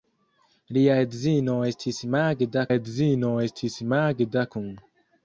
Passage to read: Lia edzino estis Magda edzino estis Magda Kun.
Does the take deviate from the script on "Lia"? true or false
false